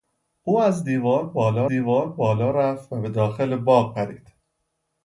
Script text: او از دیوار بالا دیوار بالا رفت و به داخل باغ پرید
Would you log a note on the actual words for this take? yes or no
no